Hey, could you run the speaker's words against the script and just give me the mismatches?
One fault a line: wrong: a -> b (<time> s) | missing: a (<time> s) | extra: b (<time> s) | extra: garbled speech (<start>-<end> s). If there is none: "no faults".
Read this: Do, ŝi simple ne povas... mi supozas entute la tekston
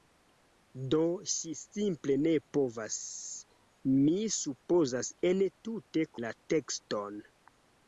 no faults